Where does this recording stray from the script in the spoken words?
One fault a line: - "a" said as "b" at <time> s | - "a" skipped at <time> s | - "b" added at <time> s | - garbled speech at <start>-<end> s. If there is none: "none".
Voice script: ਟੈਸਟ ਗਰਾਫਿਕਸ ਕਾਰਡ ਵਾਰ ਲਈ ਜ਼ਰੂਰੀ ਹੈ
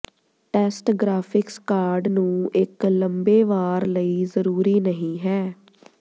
- "ਨੂੰ ਇੱਕ ਲੰਬੇ" added at 2.1 s
- "ਨਹੀ" added at 4.8 s